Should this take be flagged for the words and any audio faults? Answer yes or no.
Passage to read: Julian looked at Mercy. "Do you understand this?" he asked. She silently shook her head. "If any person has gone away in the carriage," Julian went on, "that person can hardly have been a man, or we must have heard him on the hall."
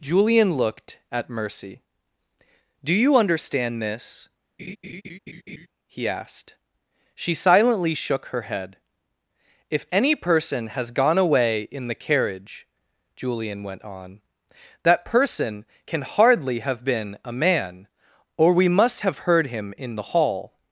yes